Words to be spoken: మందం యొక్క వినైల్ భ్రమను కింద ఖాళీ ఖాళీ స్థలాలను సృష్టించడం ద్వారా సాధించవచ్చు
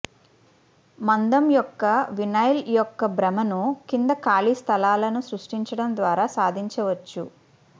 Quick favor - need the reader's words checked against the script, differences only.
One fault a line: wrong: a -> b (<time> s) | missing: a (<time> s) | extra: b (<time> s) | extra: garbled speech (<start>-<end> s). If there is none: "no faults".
extra: యొక్క (2.7 s)
missing: ఖాళీ (4.5 s)